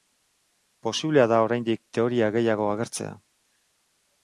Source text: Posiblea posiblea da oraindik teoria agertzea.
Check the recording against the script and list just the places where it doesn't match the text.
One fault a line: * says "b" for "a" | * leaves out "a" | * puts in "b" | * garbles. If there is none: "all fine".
* leaves out "posiblea"
* puts in "gehiago"